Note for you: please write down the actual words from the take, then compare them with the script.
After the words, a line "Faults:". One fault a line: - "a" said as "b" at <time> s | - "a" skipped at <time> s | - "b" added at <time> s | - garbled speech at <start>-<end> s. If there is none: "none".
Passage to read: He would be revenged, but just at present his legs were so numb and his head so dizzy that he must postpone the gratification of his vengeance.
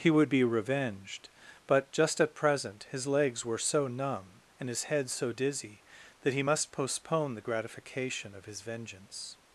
He would be revenged, but just at present his legs were so numb and his head so dizzy that he must postpone the gratification of his vengeance.
Faults:
none